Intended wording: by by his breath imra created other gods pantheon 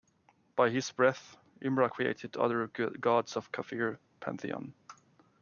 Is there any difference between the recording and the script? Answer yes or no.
yes